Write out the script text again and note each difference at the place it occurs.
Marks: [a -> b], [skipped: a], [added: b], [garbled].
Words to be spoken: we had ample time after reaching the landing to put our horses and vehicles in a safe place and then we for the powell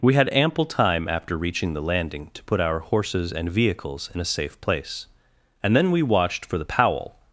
we had ample time after reaching the landing to put our horses and vehicles in a safe place and then we [added: watched] for the powell